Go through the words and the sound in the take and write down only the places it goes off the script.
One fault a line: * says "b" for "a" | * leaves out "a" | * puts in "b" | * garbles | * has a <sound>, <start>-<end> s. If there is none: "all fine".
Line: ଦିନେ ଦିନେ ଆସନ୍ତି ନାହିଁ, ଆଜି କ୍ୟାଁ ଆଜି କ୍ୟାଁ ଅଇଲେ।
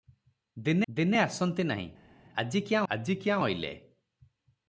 all fine